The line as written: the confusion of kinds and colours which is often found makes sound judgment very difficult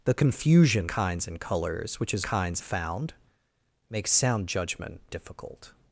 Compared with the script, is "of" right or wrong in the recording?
wrong